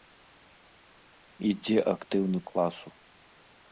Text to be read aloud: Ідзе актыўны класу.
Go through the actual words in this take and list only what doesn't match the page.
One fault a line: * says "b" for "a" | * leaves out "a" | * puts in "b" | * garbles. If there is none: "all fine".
all fine